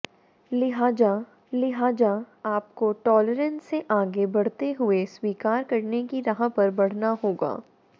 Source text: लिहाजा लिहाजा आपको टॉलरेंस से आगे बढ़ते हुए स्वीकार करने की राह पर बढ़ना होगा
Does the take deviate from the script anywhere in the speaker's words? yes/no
no